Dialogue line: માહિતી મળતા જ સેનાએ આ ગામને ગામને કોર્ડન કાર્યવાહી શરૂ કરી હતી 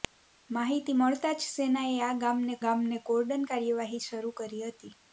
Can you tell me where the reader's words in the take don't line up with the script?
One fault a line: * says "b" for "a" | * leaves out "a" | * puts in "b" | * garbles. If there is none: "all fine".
all fine